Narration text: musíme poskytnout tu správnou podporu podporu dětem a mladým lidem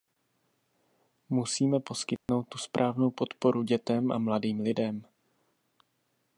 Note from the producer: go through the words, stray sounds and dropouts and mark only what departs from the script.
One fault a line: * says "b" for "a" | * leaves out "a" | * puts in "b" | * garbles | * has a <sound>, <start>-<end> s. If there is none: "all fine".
* has a dropout, 2.2-2.3 s
* leaves out "podporu"